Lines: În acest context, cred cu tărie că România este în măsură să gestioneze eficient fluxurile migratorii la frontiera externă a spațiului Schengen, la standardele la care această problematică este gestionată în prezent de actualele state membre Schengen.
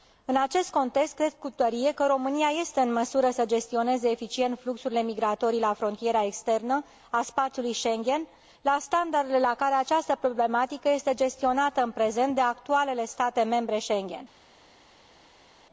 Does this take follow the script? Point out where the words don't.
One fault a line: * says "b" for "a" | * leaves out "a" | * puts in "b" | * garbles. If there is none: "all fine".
all fine